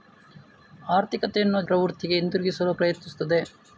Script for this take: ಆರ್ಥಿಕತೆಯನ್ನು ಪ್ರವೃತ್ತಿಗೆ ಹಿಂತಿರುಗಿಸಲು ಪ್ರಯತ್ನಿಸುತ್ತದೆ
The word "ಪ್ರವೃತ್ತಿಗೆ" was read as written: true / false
true